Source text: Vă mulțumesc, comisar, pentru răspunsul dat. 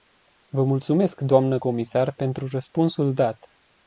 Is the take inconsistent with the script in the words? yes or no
yes